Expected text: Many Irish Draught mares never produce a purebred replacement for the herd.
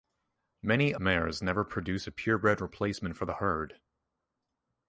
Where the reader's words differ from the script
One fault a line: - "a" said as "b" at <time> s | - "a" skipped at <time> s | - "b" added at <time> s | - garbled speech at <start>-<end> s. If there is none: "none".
- "Irish Draught" skipped at 0.9 s